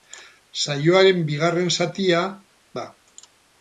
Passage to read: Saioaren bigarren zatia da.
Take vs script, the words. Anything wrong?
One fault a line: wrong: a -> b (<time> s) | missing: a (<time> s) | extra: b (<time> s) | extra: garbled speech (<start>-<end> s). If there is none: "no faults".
no faults